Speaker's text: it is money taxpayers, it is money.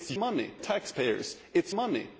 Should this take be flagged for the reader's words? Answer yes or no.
no